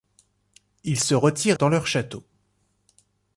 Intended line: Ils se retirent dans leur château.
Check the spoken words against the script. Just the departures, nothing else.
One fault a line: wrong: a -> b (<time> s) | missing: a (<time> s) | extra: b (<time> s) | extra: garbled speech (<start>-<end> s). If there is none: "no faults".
no faults